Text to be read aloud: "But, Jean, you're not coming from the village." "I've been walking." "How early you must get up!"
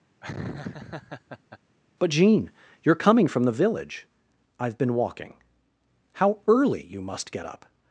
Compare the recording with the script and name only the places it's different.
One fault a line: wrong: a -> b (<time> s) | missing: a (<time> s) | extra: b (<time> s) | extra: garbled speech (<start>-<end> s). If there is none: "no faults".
missing: not (2.9 s)